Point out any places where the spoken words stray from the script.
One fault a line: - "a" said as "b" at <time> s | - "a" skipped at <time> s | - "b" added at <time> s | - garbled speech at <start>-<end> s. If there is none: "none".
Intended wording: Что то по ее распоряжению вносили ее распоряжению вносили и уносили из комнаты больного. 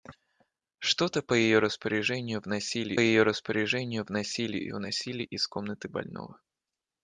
none